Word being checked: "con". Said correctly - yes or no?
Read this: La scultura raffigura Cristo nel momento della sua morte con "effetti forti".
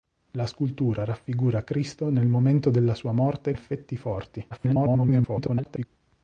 no